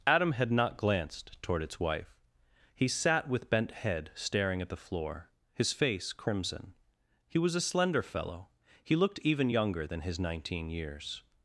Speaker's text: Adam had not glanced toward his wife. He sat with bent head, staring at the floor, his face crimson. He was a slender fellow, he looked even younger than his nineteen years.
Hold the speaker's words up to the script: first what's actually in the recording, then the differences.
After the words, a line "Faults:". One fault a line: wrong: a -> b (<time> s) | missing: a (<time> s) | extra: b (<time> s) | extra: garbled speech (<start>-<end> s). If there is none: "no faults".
Adam had not glanced toward its wife. He sat with bent head, staring at the floor, his face crimson. He was a slender fellow, he looked even younger than his nineteen years.
Faults:
wrong: his -> its (1.6 s)